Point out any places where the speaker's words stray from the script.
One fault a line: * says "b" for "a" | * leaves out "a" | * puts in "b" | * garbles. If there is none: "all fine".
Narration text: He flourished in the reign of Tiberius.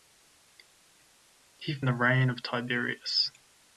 * leaves out "flourished in"